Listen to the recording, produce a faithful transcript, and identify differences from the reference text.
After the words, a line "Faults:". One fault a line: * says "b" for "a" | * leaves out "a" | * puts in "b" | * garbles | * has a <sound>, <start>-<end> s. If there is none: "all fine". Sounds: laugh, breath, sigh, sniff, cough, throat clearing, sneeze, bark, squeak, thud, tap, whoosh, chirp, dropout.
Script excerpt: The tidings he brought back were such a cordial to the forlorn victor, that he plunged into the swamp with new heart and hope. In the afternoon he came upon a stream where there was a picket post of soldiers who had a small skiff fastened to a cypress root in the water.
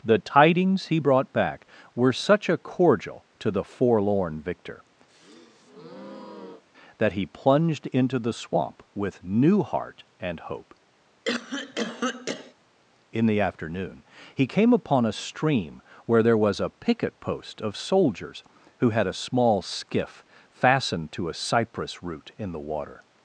The tidings he brought back were such a cordial to the forlorn victor, that he plunged into the swamp with new heart and hope. In the afternoon he came upon a stream where there was a picket post of soldiers who had a small skiff fastened to a cypress root in the water.
Faults:
* has a breath, 5.1-6.6 s
* has a cough, 11.2-12.5 s